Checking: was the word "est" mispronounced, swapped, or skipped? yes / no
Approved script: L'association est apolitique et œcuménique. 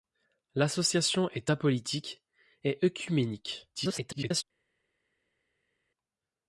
no